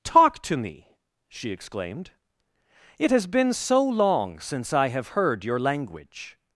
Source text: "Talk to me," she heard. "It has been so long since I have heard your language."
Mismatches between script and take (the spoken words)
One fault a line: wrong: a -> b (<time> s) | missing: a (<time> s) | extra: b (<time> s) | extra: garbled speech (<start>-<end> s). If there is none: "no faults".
wrong: heard -> exclaimed (1.5 s)